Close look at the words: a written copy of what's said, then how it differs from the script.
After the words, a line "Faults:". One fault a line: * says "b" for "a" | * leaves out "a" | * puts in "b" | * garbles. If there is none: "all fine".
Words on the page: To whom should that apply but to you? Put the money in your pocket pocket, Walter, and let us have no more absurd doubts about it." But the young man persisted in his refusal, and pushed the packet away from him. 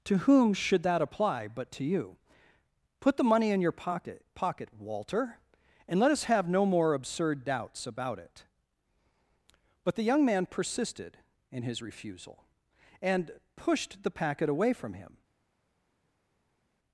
To whom should that apply but to you? Put the money in your pocket pocket, Walter, and let us have no more absurd doubts about it." But the young man persisted in his refusal, and pushed the packet away from him.
Faults:
all fine